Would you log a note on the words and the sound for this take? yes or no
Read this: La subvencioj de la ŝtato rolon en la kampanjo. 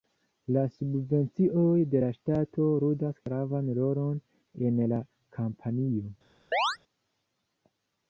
yes